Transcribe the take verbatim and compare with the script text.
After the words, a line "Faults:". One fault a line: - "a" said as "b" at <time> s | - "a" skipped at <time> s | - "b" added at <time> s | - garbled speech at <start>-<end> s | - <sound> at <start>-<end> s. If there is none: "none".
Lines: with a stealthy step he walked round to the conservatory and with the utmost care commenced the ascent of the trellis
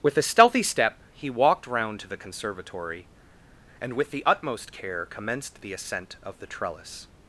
with a stealthy step he walked round to the conservatory and with the utmost care commenced the ascent of the trellis
Faults:
none